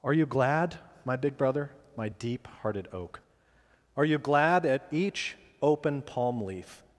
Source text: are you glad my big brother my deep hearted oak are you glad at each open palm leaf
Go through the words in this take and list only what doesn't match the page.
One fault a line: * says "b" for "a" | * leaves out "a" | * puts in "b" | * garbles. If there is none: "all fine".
all fine